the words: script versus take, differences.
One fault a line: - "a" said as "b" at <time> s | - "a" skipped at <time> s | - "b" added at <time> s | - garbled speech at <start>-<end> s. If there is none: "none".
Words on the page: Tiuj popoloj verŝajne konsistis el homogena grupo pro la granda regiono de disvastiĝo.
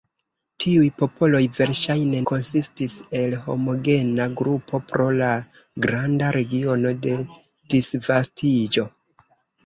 none